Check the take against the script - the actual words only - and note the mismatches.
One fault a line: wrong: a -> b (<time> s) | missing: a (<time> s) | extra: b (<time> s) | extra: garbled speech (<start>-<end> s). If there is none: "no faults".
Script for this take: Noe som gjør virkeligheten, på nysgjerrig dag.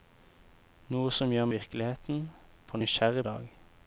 no faults